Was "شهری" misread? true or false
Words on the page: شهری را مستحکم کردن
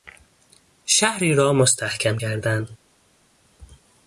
false